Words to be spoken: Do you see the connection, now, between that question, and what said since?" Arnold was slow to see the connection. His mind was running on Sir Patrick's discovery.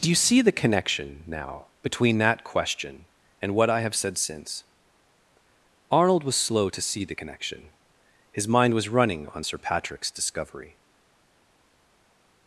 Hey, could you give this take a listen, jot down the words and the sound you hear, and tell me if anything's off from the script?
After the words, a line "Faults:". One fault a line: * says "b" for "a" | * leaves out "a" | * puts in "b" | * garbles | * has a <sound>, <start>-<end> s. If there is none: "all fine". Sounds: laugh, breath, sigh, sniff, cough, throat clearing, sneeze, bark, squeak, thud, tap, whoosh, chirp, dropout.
Do you see the connection, now, between that question, and what I have said since?" Arnold was slow to see the connection. His mind was running on Sir Patrick's discovery.
Faults:
* puts in "I have"